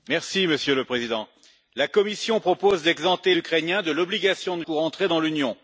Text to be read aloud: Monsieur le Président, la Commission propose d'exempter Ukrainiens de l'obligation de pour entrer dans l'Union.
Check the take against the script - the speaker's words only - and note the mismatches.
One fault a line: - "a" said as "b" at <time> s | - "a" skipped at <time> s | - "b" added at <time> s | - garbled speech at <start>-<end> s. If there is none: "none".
none